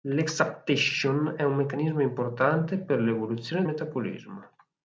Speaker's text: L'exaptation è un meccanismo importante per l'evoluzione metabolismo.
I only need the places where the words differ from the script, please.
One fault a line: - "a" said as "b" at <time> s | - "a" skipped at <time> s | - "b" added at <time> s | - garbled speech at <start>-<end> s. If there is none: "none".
none